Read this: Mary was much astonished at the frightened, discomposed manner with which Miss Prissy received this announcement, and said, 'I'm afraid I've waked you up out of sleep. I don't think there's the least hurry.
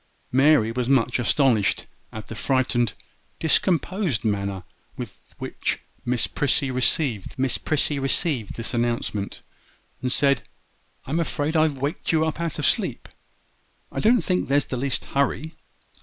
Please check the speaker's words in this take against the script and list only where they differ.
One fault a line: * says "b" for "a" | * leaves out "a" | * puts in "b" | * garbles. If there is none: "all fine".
* puts in "Miss Prissy received"